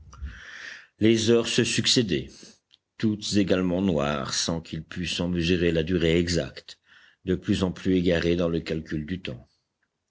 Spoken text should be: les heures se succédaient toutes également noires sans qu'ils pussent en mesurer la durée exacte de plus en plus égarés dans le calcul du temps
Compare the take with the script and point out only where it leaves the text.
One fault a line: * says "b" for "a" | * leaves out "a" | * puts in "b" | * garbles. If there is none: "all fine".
all fine